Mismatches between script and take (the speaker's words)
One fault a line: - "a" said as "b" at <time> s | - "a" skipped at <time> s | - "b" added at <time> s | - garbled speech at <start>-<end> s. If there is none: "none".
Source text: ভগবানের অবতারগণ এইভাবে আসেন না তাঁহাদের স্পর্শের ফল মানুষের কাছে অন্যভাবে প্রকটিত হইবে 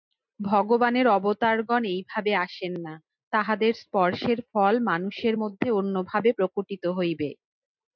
- "কাছে" said as "মধ্যে" at 5.4 s